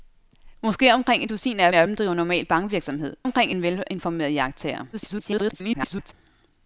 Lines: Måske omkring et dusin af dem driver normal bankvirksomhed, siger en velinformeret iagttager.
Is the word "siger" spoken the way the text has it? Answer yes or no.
no